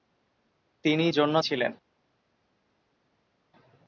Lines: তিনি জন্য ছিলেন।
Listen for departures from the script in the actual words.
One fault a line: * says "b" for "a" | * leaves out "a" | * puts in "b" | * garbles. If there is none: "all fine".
all fine